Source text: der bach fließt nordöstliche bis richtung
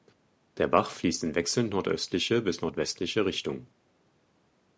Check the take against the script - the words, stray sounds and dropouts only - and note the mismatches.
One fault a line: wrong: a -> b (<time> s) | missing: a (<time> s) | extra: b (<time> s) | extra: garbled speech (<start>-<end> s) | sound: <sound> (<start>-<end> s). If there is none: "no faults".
extra: in wechselnd (1.2 s)
extra: nordwestliche (2.6 s)